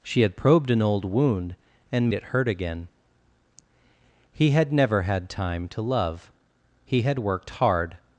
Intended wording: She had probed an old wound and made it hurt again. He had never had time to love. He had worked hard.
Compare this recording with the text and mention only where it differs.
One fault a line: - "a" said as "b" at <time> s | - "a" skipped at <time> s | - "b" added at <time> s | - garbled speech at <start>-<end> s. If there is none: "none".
- "made" skipped at 2.1 s